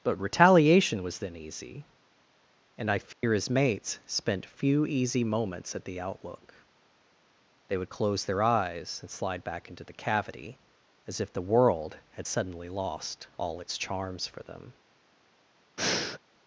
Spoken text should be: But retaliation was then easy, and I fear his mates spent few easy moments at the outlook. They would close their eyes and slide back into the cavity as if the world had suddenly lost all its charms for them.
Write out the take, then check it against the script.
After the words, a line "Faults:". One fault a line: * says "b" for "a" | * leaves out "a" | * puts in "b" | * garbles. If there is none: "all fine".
But retaliation was then easy, and I fear his mates spent few easy moments at the outlook. They would close their eyes and slide back into the cavity as if the world had suddenly lost all its charms for them.
Faults:
all fine